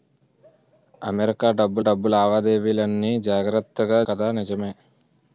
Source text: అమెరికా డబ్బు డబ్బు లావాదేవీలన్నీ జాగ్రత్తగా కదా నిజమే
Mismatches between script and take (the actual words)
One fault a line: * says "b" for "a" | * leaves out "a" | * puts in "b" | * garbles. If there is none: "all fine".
all fine